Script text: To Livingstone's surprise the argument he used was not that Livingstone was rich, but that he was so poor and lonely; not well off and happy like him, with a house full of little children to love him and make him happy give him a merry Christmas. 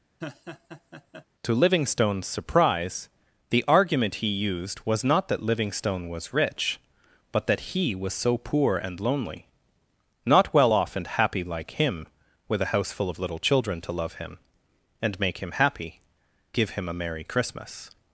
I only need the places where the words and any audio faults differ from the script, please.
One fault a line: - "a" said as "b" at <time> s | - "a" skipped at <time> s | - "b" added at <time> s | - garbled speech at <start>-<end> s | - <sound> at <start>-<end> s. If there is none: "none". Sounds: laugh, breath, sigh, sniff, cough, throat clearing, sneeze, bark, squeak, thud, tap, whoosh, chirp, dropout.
- laugh at 0.2-1.3 s